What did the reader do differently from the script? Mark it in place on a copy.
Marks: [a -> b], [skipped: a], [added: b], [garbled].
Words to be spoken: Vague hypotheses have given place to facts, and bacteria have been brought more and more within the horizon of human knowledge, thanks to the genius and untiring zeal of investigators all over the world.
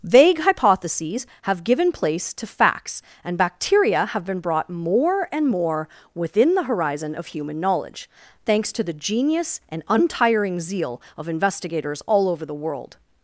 Vague hypotheses have given place to facts, and bacteria have been brought more and more within the horizon of human knowledge, thanks to the genius and untiring zeal of investigators all over the world.